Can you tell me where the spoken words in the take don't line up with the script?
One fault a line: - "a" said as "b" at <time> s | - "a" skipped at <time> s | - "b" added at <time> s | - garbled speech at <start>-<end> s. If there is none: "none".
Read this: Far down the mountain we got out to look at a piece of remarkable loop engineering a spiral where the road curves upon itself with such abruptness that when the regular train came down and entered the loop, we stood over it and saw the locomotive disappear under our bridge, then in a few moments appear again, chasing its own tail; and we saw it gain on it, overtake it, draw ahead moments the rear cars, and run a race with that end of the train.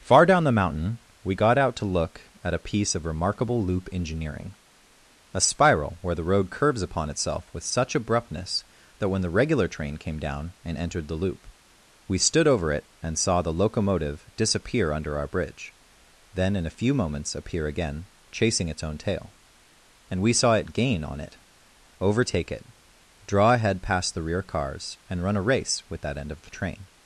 - "moments" said as "past" at 23.8 s